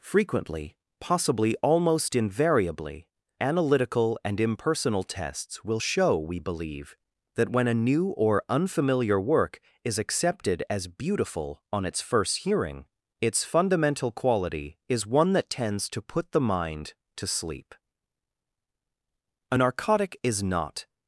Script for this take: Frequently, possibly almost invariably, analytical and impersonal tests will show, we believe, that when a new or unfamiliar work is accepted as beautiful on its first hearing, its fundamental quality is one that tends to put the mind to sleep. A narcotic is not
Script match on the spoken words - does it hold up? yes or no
yes